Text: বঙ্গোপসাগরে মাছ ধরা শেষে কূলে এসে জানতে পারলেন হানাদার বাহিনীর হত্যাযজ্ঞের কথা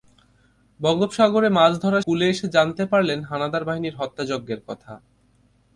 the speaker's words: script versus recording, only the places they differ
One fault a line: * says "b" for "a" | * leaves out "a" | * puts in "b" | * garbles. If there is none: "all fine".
* leaves out "শেষে"